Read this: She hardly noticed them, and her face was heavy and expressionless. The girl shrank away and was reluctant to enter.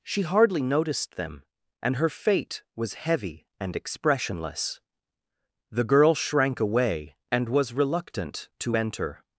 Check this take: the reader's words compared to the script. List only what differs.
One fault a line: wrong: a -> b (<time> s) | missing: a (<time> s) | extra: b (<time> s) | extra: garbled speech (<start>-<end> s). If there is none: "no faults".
wrong: face -> fate (2.1 s)